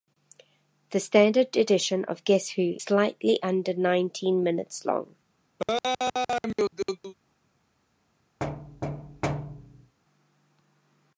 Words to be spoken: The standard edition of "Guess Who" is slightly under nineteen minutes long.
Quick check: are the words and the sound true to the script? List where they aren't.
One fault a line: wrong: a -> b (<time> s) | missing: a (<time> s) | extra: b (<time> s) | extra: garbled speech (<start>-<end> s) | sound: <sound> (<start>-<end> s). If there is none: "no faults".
missing: is (2.8 s)
sound: laugh (5.6-7.1 s)
sound: thud (8.4-9.9 s)